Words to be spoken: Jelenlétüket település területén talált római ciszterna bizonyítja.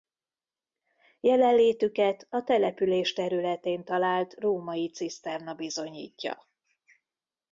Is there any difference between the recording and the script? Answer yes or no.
yes